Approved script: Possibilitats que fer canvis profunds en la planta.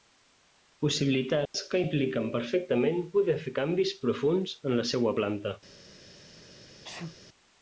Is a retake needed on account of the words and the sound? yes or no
yes